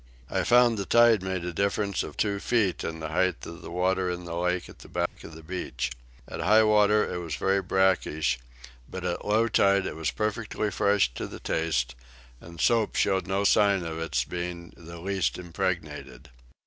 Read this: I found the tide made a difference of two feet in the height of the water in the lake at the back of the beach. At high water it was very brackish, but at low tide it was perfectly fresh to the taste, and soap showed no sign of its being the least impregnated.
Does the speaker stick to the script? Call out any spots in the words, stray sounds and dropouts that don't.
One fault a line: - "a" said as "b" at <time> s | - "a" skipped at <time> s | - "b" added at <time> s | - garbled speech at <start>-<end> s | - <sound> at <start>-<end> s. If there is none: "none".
- dropout at 5.1-5.2 s